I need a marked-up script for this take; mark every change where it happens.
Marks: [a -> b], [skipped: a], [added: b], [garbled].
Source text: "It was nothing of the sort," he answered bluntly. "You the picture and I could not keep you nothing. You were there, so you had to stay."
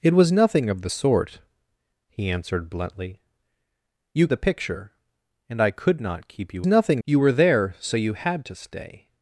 "It was nothing of the sort," he answered bluntly. "You the picture and I could not keep you nothing. You were there, so you had to stay."